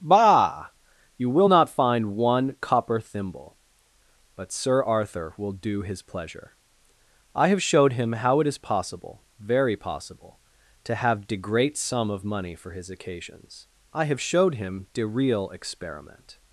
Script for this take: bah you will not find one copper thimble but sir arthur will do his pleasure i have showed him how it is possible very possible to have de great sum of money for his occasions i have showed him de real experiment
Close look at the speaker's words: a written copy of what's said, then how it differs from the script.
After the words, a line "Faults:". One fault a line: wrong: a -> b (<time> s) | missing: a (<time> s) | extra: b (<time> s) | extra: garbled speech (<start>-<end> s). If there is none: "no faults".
bah you will not find one copper thimble but sir arthur will do his pleasure i have showed him how it is possible very possible to have de great sum of money for his occasions i have showed him de real experiment
Faults:
no faults